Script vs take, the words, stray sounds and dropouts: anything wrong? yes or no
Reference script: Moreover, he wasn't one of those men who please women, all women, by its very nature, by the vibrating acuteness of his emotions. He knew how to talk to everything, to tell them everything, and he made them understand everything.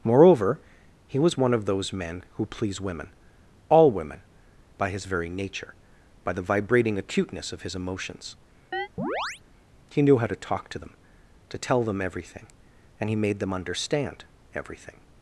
yes